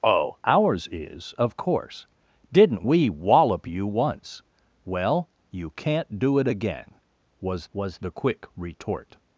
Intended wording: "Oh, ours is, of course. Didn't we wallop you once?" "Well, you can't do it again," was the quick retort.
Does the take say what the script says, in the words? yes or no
no